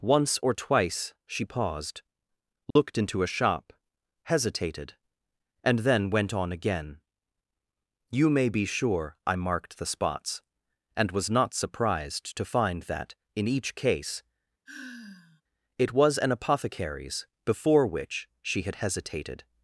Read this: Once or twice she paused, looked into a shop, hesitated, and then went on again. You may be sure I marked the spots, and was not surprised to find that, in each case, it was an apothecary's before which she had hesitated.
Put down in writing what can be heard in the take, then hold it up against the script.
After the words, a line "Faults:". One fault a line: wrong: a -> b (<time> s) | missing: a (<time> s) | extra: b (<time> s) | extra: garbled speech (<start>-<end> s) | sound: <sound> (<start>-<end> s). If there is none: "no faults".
Once or twice she paused, looked into a shop, hesitated, and then went on again. You may be sure I marked the spots, and was not surprised to find that, in each case, it was an apothecary's before which she had hesitated.
Faults:
sound: dropout (2.7-2.8 s)
sound: sigh (14.7-15.4 s)